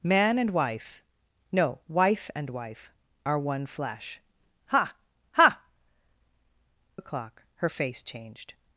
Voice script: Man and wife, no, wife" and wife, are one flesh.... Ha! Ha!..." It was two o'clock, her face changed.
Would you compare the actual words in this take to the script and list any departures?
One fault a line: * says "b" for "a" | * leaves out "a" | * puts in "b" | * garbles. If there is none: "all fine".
* leaves out "It was two"